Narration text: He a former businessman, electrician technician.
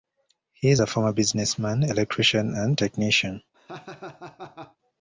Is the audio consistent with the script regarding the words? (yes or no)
no